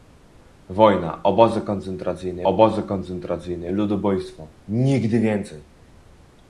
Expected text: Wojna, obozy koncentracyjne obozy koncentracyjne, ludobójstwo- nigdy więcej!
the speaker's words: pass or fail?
pass